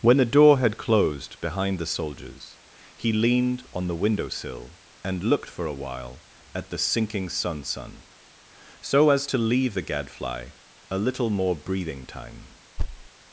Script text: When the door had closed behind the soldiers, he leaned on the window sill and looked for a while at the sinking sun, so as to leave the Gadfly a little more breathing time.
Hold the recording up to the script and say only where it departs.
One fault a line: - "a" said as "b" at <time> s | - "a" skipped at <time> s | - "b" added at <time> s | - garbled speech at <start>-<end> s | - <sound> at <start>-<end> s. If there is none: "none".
- "sun" added at 7.6 s
- thud at 12.8-13.1 s